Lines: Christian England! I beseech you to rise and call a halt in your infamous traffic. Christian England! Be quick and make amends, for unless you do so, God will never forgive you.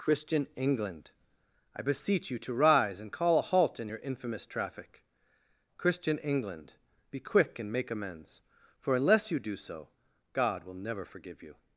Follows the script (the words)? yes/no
yes